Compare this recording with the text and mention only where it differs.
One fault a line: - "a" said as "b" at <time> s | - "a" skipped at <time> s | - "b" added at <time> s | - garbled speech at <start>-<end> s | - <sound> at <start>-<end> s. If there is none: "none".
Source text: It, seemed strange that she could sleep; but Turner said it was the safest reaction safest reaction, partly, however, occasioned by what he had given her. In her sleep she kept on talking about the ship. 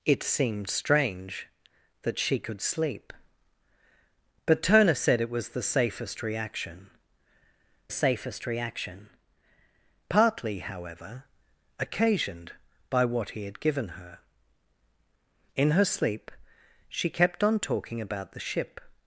none